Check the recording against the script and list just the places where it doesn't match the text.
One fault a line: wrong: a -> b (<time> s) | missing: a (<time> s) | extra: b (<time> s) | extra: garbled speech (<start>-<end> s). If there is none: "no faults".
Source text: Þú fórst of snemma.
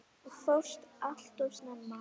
extra: allt (1.1 s)